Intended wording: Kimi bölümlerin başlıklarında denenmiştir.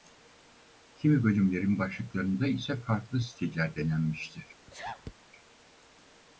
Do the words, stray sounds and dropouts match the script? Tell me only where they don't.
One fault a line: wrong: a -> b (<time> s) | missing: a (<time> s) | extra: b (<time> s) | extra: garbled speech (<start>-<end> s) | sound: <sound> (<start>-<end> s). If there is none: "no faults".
extra: ise farklı stiller (2.5 s)
sound: sneeze (4.7-5.1 s)